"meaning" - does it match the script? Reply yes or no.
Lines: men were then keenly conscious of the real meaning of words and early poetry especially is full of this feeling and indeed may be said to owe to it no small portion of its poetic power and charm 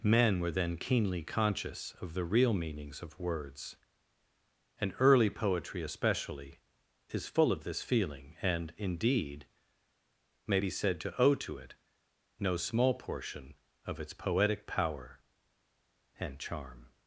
no